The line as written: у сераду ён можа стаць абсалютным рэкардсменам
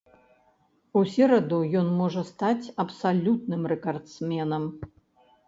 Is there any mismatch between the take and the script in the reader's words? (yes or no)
no